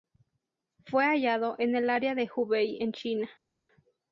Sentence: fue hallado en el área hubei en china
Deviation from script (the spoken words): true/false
true